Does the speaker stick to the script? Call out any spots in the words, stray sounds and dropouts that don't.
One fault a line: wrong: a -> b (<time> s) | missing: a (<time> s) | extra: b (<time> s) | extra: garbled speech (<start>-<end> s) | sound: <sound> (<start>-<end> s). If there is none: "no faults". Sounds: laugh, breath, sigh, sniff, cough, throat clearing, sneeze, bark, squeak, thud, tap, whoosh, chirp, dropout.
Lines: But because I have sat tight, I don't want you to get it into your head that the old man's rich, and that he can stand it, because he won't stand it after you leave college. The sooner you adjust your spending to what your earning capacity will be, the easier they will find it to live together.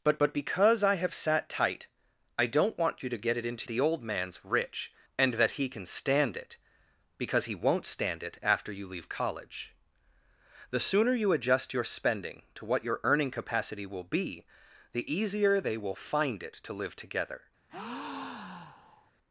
extra: but (0.2 s)
missing: your head that (3.7 s)
sound: breath (17.7-19.1 s)